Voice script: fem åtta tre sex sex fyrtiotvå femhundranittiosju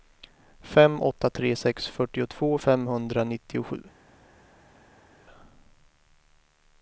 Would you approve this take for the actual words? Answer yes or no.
no